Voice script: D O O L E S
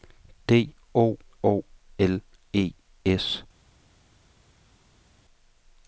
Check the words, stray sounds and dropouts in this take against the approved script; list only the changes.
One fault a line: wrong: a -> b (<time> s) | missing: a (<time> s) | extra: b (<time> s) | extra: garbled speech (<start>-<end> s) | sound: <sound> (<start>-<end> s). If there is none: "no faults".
no faults